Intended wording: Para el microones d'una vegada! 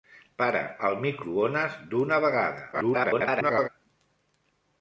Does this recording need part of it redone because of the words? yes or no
yes